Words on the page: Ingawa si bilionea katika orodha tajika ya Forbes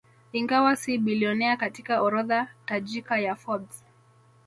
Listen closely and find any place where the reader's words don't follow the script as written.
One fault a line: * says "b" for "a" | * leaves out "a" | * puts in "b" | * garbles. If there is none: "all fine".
all fine